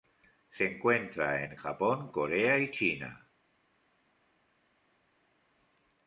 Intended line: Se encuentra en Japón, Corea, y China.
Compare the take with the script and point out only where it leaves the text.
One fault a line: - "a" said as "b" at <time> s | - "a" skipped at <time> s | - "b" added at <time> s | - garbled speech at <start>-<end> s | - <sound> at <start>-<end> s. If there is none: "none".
none